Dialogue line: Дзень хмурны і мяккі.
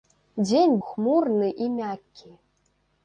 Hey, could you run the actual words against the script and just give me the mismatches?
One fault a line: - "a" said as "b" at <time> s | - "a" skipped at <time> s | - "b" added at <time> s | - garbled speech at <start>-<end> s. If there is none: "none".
none